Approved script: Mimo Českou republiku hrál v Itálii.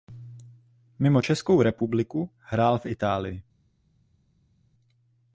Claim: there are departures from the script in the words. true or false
false